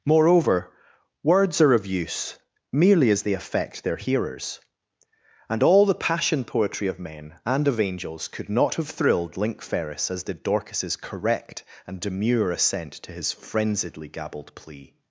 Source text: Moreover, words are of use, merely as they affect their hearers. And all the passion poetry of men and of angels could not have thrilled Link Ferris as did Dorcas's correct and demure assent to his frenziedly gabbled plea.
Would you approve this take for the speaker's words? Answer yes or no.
yes